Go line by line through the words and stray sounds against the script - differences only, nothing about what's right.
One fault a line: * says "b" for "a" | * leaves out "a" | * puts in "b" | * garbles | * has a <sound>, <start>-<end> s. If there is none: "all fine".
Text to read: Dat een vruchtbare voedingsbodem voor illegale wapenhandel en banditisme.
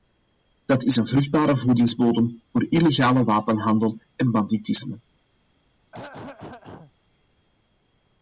* puts in "is"
* has a throat clearing, 5.9-6.9 s